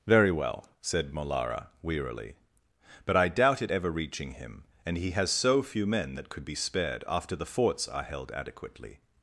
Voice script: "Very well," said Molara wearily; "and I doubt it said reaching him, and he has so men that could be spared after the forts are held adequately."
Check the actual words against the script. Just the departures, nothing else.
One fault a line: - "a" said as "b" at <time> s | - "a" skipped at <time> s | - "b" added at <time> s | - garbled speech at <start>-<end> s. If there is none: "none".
- "and" said as "but" at 3.0 s
- "said" said as "ever" at 3.7 s
- "few" added at 5.6 s